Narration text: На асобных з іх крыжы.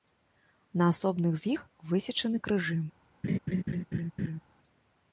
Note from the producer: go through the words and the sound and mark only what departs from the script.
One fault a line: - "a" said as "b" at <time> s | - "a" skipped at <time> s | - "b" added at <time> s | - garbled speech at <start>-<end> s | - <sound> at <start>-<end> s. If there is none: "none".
- "высечаны" added at 1.9 s
- laugh at 3.2-4.4 s